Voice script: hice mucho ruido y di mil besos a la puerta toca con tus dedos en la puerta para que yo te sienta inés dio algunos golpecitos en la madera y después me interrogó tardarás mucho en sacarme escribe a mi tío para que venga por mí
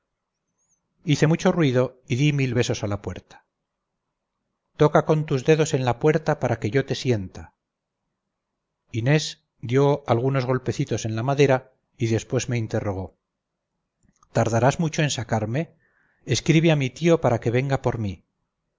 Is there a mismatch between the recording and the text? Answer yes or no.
no